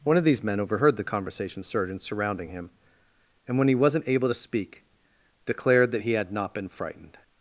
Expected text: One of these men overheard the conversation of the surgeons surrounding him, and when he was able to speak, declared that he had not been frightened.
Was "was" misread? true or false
true